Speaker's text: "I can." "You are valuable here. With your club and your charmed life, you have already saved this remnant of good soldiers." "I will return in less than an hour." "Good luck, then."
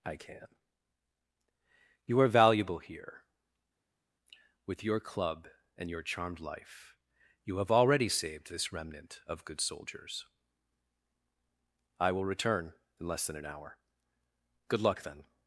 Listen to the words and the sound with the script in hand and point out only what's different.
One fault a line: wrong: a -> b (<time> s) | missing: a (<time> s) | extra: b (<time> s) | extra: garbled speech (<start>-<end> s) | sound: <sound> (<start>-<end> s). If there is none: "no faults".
no faults